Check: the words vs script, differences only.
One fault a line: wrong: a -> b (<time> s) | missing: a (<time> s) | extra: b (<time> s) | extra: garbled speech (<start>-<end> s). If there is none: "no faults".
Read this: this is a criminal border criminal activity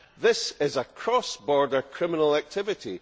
wrong: criminal -> cross (0.8 s)